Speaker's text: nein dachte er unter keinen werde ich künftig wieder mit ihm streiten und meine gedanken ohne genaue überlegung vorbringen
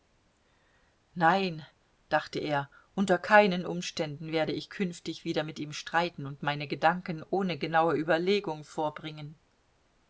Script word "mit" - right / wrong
right